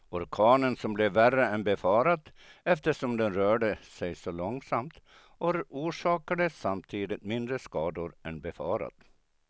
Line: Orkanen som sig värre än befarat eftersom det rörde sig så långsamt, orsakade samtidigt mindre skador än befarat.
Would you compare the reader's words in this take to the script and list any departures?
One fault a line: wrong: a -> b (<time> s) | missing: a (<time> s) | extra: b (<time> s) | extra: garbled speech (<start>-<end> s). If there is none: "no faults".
wrong: sig -> blev (0.9 s)
wrong: det -> den (3.2 s)